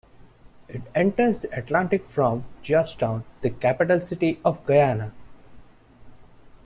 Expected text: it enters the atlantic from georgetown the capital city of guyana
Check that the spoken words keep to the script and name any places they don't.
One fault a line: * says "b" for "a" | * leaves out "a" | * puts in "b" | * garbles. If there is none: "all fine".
all fine